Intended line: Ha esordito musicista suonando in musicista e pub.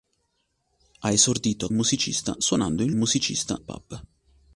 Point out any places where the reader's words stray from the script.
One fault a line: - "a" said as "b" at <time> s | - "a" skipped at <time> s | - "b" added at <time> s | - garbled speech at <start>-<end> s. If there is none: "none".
none